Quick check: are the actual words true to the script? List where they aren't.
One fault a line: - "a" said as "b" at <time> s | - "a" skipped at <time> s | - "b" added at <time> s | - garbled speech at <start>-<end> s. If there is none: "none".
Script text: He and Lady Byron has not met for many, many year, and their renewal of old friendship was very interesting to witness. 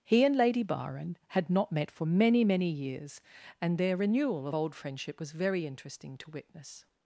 - "has" said as "had" at 1.3 s
- "year" said as "years" at 2.7 s